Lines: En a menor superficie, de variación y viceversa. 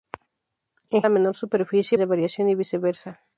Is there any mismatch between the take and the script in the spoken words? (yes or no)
no